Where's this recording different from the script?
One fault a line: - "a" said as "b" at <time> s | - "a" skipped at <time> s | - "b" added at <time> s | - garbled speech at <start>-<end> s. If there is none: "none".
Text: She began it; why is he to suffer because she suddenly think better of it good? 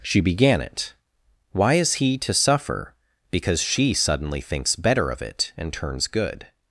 - "think" said as "thinks" at 4.4 s
- "and turns" added at 5.6 s